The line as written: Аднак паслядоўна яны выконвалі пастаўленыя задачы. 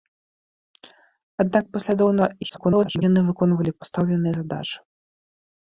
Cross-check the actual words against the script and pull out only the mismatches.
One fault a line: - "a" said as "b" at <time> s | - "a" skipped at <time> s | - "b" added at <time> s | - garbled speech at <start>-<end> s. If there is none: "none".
- garbled speech at 2.4-3.0 s